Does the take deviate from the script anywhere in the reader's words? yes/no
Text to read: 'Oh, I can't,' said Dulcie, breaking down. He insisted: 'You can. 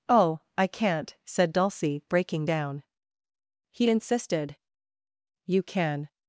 no